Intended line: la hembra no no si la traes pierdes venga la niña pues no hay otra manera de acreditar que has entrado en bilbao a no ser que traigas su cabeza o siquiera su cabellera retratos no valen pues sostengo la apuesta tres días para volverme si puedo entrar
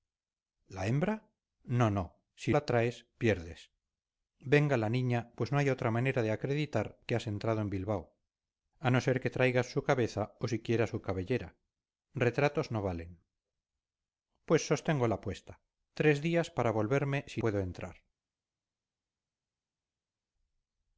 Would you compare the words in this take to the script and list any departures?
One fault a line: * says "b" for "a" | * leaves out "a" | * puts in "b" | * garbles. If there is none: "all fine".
all fine